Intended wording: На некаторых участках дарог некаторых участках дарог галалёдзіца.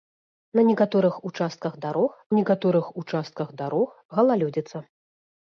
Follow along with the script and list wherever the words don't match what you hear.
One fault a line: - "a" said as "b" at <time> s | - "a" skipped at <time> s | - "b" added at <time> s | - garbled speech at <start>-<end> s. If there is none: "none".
none